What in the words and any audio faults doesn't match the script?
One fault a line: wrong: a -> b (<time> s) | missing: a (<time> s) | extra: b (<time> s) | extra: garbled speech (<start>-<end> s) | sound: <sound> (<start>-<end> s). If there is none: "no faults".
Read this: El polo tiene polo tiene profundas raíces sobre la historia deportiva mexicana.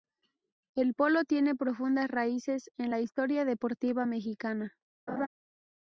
missing: polo tiene (1.5 s)
wrong: sobre -> en (2.8 s)
sound: laugh (5.1-5.3 s)